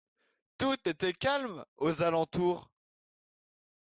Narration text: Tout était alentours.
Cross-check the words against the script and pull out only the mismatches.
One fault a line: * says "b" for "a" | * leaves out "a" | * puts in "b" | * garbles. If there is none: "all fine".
* puts in "calme aux"